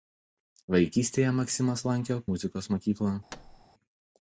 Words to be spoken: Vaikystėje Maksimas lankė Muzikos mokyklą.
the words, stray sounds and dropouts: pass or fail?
fail